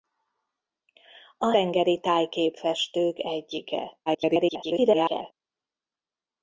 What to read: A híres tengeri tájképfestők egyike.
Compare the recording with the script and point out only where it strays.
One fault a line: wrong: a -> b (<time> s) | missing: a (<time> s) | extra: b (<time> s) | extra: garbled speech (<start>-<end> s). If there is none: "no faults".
missing: híres (1.5 s)
extra: garbled speech (4.1-5.3 s)